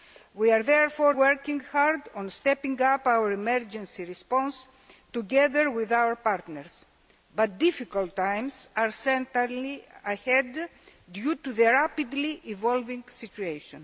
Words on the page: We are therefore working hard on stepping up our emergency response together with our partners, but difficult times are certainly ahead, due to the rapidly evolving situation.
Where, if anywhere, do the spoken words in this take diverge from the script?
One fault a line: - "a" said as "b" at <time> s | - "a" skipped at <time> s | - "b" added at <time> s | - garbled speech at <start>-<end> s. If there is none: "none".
none